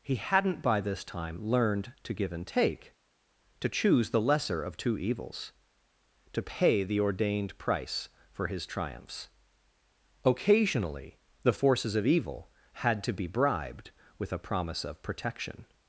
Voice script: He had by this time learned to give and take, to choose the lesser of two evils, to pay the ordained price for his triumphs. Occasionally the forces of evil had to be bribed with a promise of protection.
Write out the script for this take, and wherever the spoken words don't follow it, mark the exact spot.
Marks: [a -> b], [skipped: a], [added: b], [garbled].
He [had -> hadn't] by this time learned to give and take, to choose the lesser of two evils, to pay the ordained price for his triumphs. Occasionally the forces of evil had to be bribed with a promise of protection.